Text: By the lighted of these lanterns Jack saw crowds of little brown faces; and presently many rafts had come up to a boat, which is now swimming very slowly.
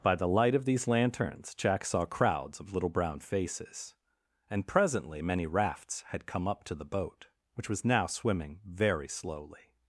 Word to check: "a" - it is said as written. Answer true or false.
false